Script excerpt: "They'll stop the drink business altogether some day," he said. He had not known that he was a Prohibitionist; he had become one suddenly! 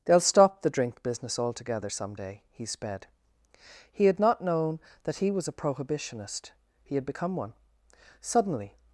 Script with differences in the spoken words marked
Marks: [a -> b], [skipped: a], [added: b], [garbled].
"They'll stop the drink business altogether some day," he [said. -> sped] He had not known that he was a Prohibitionist; he had become one suddenly!